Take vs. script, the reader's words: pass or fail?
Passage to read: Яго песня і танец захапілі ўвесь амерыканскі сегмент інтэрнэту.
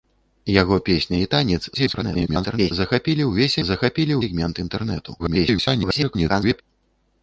fail